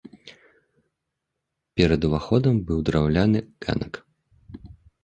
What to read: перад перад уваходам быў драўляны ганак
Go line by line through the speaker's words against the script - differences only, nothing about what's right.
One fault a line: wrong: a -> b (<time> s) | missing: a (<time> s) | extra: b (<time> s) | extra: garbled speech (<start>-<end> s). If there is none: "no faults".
missing: перад (2.0 s)